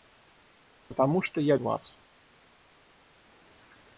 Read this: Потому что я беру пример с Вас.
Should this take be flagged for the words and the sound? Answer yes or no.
yes